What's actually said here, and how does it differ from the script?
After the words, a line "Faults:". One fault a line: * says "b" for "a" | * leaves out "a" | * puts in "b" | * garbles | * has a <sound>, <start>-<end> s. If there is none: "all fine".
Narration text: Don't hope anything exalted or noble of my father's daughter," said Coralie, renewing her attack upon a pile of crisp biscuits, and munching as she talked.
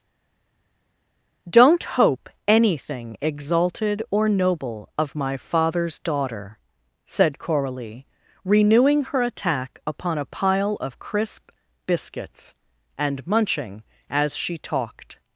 Don't hope anything exalted or noble of my father's daughter," said Coralie, renewing her attack upon a pile of crisp biscuits, and munching as she talked.
Faults:
all fine